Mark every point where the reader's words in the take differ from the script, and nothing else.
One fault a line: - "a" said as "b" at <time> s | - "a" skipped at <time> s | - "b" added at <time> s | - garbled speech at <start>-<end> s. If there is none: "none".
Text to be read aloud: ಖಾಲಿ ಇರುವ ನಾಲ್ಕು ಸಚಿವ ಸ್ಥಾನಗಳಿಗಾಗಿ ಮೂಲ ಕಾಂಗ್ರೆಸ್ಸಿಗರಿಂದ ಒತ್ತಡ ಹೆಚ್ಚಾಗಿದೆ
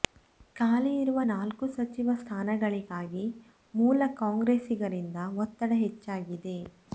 none